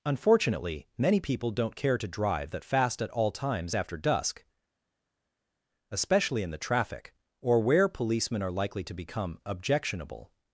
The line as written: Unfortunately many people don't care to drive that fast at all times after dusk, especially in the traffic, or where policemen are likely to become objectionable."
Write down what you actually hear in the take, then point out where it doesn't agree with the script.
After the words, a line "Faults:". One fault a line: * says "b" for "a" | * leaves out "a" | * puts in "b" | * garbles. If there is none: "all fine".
Unfortunately many people don't care to drive that fast at all times after dusk, especially in the traffic, or where policemen are likely to become objectionable."
Faults:
all fine